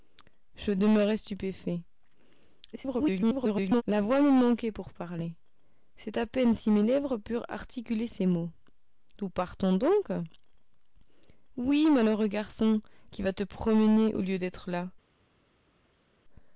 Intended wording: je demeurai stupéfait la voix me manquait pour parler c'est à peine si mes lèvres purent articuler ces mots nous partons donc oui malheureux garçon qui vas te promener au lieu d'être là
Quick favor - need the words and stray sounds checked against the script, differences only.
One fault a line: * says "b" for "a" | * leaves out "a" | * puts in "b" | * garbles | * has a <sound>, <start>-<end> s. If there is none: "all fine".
* garbles